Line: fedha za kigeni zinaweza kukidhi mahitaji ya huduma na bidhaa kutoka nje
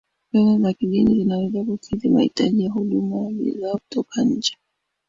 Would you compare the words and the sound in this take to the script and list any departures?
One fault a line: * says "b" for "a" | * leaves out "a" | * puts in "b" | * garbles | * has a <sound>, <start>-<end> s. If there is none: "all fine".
all fine